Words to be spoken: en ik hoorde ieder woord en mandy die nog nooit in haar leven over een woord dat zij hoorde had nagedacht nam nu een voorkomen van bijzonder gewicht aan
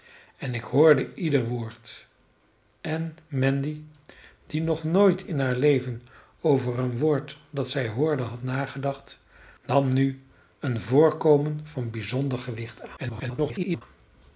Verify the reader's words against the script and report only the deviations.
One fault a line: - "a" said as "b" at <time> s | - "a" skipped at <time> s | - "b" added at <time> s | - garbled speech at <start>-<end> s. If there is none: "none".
- garbled speech at 13.0-13.8 s